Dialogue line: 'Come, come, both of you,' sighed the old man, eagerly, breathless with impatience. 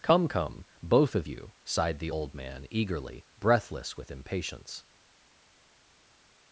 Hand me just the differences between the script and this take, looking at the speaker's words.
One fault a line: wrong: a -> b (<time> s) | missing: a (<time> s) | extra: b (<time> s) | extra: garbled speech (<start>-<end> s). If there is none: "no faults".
no faults